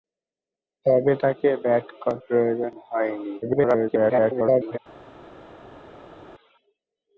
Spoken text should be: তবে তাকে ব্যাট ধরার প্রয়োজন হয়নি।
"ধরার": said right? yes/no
no